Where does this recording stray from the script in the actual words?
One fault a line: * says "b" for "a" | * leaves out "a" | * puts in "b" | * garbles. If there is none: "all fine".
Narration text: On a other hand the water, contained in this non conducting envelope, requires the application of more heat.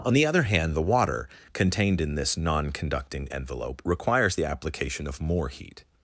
* says "the" for "a"